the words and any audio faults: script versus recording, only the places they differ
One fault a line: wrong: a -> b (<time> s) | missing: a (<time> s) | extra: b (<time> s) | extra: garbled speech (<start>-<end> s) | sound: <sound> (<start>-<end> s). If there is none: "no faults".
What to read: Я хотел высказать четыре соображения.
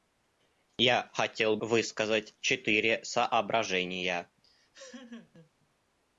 sound: laugh (4.4-5.5 s)